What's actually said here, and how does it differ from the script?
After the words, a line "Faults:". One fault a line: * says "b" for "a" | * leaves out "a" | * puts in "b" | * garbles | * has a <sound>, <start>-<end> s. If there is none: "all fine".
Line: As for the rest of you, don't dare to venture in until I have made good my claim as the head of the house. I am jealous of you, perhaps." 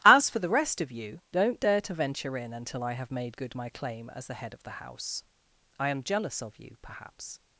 As for the rest of you, don't dare to venture in until I have made good my claim as the head of the house. I am jealous of you, perhaps."
Faults:
all fine